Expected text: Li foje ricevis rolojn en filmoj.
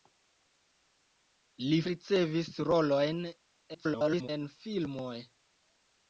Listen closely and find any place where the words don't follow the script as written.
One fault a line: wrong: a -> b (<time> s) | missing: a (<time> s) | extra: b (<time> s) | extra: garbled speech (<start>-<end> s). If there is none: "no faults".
missing: foje (1.8 s)
extra: garbled speech (3.7-4.3 s)